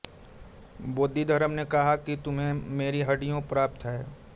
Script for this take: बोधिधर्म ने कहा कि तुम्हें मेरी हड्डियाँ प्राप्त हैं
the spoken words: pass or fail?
pass